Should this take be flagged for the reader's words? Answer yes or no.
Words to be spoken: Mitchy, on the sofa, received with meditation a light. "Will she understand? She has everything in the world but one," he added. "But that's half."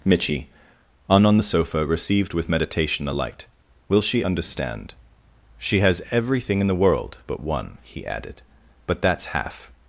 yes